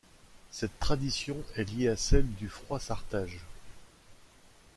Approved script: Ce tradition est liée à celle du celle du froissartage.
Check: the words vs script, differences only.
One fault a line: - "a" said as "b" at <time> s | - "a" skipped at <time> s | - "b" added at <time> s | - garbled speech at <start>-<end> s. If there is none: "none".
- "Ce" said as "Cette" at 0.5 s
- "celle du" skipped at 2.5 s